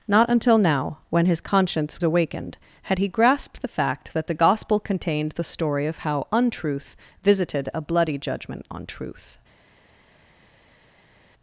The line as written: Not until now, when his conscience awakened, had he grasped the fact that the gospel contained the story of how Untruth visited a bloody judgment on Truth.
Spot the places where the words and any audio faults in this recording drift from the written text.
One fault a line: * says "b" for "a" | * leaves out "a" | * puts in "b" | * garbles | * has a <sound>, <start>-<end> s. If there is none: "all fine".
all fine